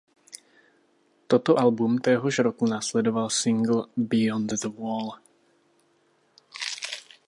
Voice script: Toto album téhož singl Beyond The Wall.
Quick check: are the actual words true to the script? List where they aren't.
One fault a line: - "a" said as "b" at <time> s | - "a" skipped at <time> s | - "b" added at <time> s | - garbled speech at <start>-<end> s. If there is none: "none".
- "roku následoval" added at 2.4 s